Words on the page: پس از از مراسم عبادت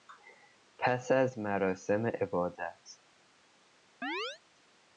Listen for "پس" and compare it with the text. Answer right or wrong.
right